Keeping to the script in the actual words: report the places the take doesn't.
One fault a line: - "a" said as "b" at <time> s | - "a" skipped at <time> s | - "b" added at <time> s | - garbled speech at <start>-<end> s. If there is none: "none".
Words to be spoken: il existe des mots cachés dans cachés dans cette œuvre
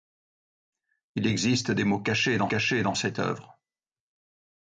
none